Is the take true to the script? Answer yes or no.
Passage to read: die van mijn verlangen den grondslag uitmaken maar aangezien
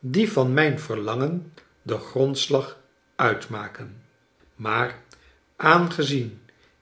yes